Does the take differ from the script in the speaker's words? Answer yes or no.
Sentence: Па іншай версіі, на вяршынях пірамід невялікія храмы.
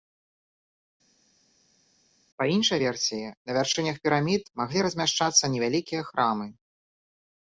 yes